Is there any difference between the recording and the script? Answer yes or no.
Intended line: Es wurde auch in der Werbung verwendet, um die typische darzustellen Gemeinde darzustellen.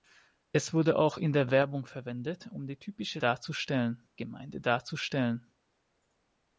no